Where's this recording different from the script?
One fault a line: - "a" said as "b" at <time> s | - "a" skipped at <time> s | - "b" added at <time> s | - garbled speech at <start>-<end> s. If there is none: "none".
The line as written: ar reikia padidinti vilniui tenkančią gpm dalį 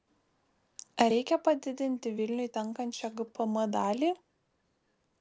none